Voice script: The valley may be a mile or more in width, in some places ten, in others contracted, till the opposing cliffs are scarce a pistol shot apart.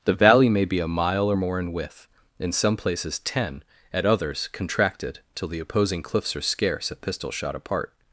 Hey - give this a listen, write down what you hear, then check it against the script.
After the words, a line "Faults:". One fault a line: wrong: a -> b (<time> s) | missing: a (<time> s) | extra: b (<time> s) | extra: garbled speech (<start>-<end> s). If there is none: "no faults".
The valley may be a mile or more in width, in some places ten, at others contracted, till the opposing cliffs are scarce a pistol shot apart.
Faults:
wrong: in -> at (3.9 s)